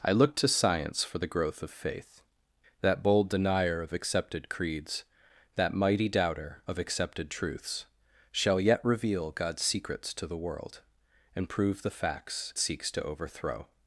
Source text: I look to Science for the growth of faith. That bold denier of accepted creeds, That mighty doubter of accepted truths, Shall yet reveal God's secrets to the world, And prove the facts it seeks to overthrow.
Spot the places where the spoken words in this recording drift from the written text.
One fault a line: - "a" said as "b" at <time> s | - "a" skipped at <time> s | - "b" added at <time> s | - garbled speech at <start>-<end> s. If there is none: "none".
- "it" skipped at 12.5 s